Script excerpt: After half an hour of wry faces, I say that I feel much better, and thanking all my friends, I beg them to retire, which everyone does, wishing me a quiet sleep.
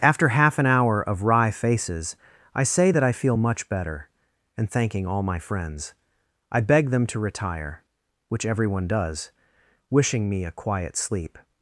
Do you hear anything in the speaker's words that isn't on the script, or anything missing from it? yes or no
no